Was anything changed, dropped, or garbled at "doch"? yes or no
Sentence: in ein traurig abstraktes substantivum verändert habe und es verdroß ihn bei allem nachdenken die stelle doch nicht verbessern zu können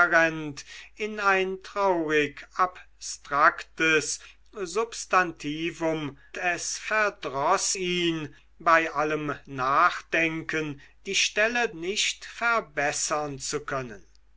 yes